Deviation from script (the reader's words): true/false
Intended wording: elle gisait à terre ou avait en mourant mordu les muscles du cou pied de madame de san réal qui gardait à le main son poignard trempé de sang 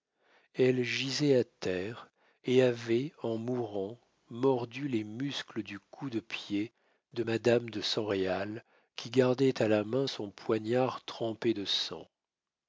true